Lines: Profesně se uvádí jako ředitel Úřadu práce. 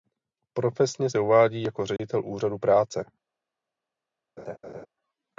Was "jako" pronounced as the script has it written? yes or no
yes